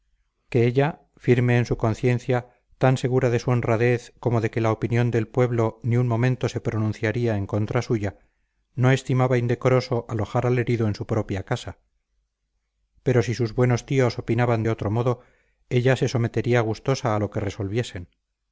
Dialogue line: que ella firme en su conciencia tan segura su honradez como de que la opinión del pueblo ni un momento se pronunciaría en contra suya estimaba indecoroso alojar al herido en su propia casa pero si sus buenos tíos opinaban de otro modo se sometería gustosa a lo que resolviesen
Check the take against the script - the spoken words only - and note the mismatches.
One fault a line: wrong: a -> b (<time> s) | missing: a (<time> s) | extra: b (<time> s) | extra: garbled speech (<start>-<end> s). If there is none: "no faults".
extra: de (3.3 s)
extra: no (8.7 s)
extra: ella (15.7 s)